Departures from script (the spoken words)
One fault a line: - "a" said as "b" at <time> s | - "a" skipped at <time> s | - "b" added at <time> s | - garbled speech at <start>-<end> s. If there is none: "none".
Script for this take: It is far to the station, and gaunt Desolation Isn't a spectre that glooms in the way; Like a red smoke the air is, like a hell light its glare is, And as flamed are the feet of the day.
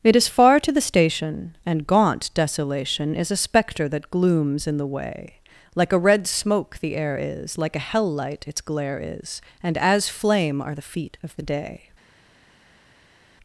- "Isn't" said as "Is" at 3.1 s
- "flamed" said as "flame" at 10.1 s